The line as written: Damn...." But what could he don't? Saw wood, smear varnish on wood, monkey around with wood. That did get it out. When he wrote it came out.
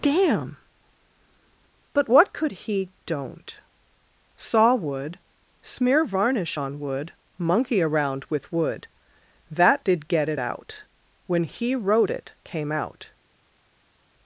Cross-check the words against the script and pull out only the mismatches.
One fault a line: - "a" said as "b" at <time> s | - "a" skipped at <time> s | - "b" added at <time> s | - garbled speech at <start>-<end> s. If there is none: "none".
none